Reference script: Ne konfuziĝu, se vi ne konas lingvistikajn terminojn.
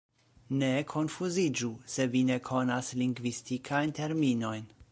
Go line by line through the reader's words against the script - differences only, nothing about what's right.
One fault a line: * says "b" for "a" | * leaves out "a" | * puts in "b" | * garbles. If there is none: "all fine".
all fine